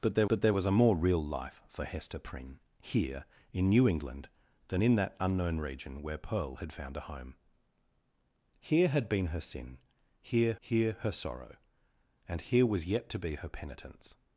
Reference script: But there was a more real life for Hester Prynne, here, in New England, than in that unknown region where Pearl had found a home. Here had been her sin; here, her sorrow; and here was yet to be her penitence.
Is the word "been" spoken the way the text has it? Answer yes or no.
yes